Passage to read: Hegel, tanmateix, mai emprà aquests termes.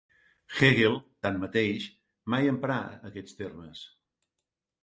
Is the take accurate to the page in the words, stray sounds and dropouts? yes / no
yes